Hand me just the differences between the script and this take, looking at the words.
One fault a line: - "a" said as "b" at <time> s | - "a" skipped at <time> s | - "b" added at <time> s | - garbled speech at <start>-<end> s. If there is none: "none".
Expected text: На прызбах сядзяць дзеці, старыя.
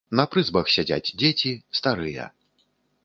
none